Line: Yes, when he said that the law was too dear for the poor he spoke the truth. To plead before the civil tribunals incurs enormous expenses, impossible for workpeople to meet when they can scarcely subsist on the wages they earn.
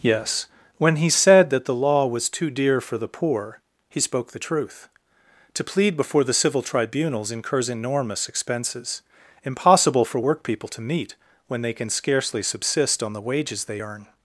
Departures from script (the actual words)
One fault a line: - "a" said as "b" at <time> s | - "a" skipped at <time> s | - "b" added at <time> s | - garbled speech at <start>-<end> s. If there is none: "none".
none